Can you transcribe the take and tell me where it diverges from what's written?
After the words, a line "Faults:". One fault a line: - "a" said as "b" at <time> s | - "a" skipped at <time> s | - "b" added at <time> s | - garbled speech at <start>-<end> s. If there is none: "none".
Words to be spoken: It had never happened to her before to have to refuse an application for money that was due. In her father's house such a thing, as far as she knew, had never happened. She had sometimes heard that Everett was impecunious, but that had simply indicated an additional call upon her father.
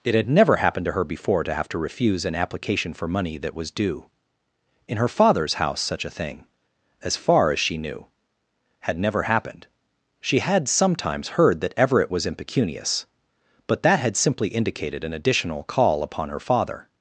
It had never happened to her before to have to refuse an application for money that was due. In her father's house such a thing, as far as she knew, had never happened. She had sometimes heard that Everett was impecunious, but that had simply indicated an additional call upon her father.
Faults:
none